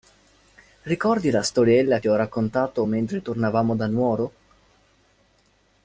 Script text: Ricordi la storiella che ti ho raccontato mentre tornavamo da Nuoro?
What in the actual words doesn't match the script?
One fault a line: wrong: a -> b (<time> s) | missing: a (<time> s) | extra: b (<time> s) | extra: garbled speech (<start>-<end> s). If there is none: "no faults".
missing: che (2.0 s)